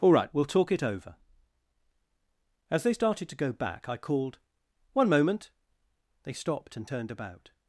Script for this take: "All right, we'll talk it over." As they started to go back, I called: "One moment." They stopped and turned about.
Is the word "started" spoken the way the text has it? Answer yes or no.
yes